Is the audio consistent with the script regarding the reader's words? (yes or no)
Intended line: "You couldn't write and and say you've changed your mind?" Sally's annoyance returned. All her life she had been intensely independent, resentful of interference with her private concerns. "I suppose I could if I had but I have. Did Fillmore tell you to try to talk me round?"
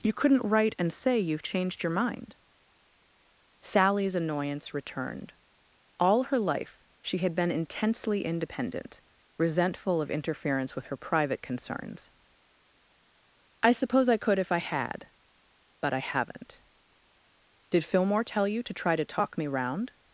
no